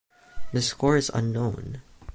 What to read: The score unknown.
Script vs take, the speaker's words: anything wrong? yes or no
yes